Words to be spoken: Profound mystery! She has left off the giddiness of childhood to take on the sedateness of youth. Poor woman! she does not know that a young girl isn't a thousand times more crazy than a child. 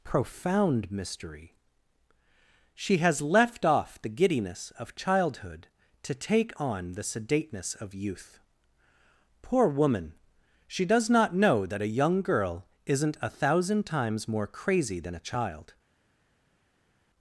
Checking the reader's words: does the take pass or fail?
pass